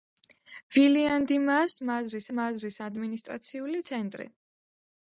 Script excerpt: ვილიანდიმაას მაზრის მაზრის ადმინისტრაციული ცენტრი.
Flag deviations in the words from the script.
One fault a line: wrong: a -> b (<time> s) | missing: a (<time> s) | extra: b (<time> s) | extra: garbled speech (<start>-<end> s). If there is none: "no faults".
no faults